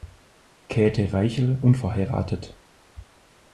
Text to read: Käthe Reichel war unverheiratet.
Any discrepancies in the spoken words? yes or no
yes